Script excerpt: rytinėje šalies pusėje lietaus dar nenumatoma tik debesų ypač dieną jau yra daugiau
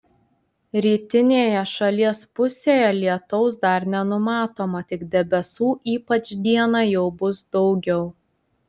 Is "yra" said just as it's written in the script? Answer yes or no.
no